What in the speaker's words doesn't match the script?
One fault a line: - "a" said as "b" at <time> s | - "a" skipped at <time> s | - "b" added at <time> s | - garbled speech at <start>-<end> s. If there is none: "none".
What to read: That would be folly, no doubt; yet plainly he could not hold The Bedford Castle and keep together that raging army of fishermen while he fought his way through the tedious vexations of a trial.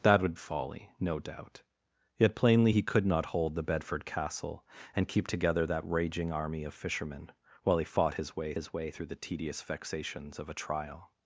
- "be" skipped at 0.3 s
- "his way" added at 8.5 s